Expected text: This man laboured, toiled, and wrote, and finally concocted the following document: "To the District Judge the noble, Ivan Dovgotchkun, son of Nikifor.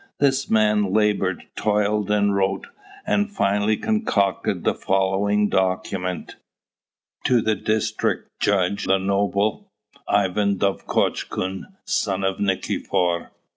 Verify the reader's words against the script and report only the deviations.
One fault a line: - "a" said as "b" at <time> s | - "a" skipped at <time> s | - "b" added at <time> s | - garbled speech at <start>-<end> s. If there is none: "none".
none